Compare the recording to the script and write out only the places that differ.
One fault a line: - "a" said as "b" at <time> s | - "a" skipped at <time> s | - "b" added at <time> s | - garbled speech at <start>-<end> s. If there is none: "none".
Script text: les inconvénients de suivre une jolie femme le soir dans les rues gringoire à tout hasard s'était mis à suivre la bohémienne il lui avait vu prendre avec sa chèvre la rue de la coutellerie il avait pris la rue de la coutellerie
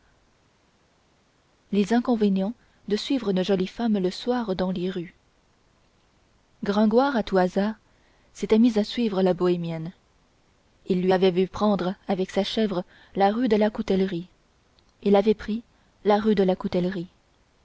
none